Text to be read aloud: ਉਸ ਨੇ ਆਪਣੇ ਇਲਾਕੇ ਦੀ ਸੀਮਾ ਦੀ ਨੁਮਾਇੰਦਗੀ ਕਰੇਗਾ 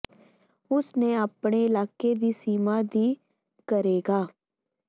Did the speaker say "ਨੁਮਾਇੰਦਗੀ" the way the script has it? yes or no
no